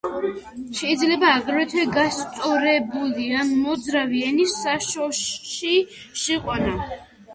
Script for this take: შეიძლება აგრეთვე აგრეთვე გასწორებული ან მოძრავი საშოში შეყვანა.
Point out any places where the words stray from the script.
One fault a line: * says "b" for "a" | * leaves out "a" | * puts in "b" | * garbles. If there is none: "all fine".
* leaves out "აგრეთვე"
* puts in "ენის"